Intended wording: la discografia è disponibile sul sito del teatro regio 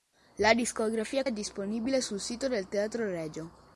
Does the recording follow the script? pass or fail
pass